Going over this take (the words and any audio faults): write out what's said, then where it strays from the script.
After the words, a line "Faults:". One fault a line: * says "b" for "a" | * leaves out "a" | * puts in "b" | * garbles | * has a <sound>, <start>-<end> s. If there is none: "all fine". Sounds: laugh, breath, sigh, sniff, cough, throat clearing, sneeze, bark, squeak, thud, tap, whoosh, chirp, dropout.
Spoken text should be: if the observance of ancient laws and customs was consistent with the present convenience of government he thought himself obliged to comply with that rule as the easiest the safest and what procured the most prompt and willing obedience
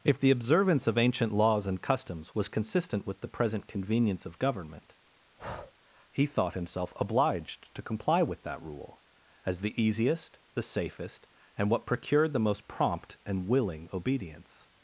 if the observance of ancient laws and customs was consistent with the present convenience of government he thought himself obliged to comply with that rule as the easiest the safest and what procured the most prompt and willing obedience
Faults:
* has a breath, 5.4-5.7 s